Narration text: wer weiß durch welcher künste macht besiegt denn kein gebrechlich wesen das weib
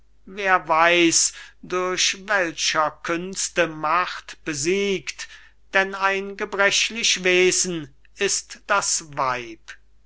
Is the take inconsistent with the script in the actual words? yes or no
yes